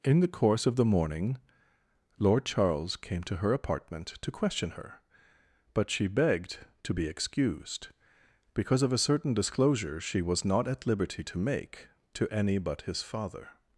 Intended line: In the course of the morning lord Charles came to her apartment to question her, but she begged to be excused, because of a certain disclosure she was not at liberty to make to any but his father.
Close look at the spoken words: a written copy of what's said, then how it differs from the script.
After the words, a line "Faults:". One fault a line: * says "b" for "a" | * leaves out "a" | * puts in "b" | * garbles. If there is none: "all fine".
In the course of the morning lord Charles came to her apartment to question her, but she begged to be excused, because of a certain disclosure she was not at liberty to make to any but his father.
Faults:
all fine